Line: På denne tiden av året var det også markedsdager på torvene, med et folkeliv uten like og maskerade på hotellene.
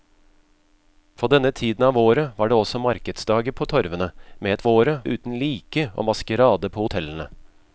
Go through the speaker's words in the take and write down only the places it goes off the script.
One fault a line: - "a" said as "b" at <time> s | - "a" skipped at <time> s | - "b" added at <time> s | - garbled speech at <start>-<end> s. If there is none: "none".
- "folkeliv" said as "året" at 4.7 s